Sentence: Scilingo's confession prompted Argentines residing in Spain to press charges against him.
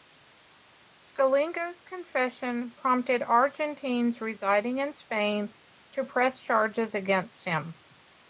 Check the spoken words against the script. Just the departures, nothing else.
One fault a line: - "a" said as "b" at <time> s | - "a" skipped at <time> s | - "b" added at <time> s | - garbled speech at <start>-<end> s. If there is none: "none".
none